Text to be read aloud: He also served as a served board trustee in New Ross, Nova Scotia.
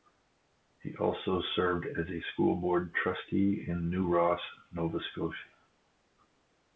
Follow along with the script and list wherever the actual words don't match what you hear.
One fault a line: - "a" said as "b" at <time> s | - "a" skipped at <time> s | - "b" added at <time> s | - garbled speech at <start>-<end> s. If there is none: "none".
- "served" said as "school" at 2.3 s